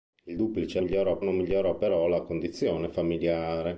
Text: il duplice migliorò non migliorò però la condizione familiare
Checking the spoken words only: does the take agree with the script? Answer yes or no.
yes